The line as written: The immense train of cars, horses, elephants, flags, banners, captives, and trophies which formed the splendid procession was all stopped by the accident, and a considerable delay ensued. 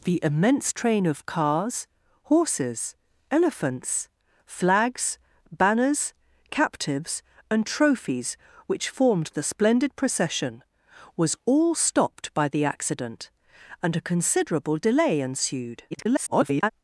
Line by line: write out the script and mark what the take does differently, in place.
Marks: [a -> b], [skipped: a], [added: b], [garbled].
The immense train of cars, horses, elephants, flags, banners, captives, and trophies which formed the splendid procession was all stopped by the accident, and a considerable delay ensued. [garbled]